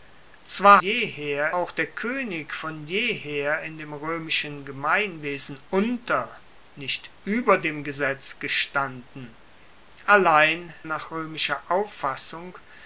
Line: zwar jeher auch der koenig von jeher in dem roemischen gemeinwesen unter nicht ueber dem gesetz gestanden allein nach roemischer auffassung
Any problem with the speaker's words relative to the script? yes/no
no